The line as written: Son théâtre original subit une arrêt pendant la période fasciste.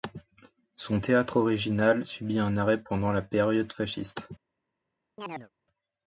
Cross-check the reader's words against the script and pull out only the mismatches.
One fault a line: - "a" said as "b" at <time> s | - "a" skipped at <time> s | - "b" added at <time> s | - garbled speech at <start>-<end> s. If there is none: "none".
- "une" said as "un" at 2.4 s